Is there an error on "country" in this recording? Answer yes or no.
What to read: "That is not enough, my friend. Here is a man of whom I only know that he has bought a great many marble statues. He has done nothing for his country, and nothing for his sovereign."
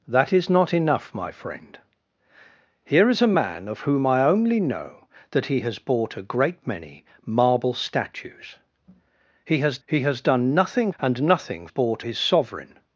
yes